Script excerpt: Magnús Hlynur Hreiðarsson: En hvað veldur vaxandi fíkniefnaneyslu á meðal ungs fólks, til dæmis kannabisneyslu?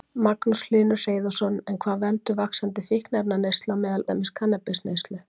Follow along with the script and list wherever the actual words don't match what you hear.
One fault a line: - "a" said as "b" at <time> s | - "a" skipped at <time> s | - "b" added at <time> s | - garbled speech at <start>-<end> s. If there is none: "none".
- "ungs fólks til" skipped at 4.1 s